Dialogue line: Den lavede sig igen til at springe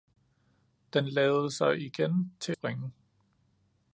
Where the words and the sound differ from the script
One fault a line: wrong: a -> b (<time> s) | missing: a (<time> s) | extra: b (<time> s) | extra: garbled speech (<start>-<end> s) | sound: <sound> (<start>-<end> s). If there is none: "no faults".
missing: at (2.5 s)